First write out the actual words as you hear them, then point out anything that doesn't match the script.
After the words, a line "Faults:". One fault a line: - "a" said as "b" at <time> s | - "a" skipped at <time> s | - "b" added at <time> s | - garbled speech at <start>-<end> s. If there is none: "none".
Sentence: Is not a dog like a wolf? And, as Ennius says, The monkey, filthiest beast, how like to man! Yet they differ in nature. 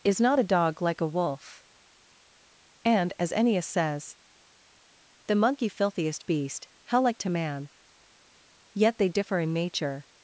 Is not a dog like a wolf? And, as Ennius says, The monkey, filthiest beast, how like to man! Yet they differ in nature.
Faults:
none